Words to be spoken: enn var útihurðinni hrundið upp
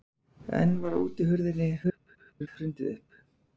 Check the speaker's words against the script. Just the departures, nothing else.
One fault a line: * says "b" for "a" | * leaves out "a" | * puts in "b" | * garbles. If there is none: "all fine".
* garbles